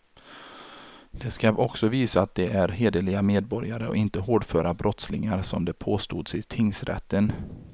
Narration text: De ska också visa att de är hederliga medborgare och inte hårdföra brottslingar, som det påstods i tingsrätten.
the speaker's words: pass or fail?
pass